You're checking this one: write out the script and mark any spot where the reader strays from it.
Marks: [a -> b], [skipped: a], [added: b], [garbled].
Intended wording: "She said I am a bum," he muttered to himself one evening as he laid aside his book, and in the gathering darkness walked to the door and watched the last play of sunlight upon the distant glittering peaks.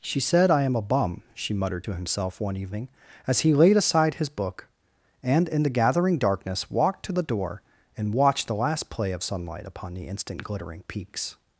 "She said I am a bum," [he -> she] muttered to himself one evening as he laid aside his book, and in the gathering darkness walked to the door and watched the last play of sunlight upon the [distant -> instant] glittering peaks.